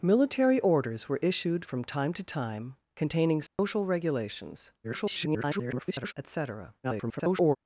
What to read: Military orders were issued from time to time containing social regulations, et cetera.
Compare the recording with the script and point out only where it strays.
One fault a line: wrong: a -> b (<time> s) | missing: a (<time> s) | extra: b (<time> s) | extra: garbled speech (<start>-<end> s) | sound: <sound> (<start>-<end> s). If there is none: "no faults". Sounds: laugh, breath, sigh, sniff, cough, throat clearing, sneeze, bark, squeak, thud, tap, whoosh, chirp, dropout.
sound: dropout (3.5-3.6 s)
extra: garbled speech (4.8-6.1 s)
extra: garbled speech (6.8-7.6 s)